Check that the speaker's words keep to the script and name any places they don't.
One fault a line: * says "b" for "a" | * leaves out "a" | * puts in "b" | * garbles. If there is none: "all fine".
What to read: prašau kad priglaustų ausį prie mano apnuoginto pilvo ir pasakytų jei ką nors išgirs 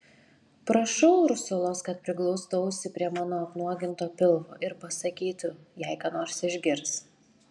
* puts in "ursulos"